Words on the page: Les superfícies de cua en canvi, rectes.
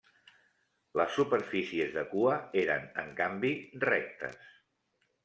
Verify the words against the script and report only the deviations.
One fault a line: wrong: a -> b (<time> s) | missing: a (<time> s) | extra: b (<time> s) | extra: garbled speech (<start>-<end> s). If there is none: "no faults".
extra: eren (2.6 s)